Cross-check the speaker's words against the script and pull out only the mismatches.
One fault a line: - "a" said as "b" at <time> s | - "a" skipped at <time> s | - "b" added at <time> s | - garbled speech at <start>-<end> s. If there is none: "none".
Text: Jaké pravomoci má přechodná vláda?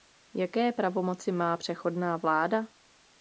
none